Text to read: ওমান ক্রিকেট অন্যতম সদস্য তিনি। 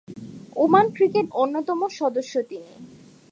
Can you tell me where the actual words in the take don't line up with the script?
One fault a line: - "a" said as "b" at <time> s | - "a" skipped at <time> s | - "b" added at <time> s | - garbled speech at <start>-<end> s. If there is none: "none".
none